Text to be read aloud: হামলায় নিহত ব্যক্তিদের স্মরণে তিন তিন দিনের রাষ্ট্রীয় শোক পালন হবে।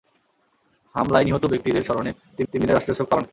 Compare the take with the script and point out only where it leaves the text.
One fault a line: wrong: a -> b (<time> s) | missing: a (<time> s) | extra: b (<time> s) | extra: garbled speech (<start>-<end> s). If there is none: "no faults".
no faults